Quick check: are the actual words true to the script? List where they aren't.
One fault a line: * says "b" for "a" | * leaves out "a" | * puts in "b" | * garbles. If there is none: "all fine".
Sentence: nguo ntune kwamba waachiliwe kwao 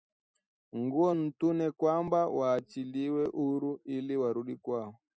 * puts in "huru ili warudi"